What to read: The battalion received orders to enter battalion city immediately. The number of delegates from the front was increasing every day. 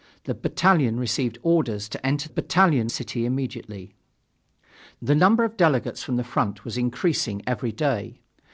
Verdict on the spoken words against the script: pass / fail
pass